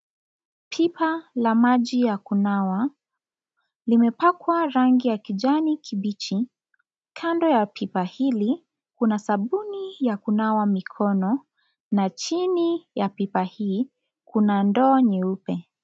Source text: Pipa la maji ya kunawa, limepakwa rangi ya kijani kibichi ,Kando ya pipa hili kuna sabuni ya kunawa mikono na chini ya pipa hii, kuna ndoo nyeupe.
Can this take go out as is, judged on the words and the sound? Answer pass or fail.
pass